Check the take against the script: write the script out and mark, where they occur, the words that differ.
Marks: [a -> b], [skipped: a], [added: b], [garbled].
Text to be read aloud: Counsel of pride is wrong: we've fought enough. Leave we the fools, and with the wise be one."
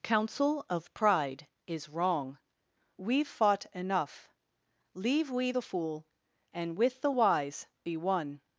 Counsel of pride is wrong: we've fought enough. Leave we the [fools, -> fool] and with the wise be one."